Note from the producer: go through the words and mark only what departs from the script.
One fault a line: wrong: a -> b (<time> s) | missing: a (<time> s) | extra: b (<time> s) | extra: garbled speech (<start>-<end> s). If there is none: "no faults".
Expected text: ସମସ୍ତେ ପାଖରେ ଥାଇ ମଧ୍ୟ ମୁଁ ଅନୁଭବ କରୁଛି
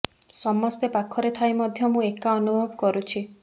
extra: ଏକା (2.1 s)